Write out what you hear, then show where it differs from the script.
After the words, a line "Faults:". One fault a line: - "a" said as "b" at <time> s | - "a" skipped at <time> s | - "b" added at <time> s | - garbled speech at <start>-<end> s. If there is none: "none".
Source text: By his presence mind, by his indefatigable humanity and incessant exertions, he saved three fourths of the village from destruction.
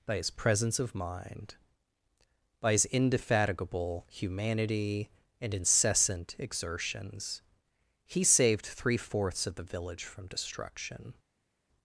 By his presence of mind, by his indefatigable humanity and incessant exertions, he saved three fourths of the village from destruction.
Faults:
- "of" added at 0.8 s